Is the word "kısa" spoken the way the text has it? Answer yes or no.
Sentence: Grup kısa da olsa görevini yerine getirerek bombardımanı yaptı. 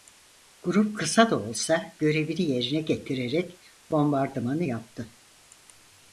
yes